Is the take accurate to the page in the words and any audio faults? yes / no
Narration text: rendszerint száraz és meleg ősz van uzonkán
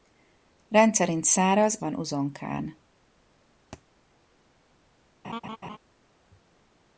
no